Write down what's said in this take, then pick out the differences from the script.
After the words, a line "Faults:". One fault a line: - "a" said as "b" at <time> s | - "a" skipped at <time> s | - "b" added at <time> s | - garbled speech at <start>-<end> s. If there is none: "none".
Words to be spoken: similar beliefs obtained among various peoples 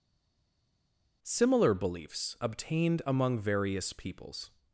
similar beliefs obtained among various peoples
Faults:
none